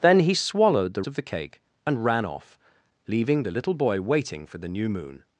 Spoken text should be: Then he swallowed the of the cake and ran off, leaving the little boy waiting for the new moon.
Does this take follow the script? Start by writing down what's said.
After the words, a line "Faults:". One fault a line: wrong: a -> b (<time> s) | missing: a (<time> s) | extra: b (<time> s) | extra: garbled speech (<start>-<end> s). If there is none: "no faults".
Then he swallowed the of the cake and ran off, leaving the little boy waiting for the new moon.
Faults:
no faults